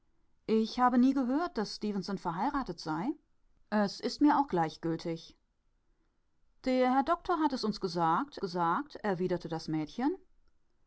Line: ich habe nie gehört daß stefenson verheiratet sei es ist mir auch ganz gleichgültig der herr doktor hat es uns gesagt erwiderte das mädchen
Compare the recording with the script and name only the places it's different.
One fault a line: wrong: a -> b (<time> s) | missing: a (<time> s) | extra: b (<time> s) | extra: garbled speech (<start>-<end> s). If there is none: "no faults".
missing: ganz (4.5 s)
extra: gesagt (8.4 s)